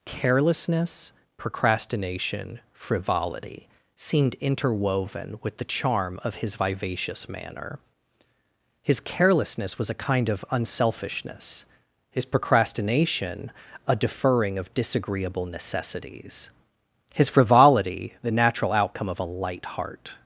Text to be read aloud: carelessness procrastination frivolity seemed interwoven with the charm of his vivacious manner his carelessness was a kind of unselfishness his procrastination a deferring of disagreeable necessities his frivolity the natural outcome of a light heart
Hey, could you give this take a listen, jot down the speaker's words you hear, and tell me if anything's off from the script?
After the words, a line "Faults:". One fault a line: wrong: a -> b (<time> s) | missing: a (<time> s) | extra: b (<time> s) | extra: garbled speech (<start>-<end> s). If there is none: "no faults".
carelessness procrastination frivolity seemed interwoven with the charm of his vivacious manner his carelessness was a kind of unselfishness his procrastination a deferring of disagreeable necessities his frivolity the natural outcome of a light heart
Faults:
no faults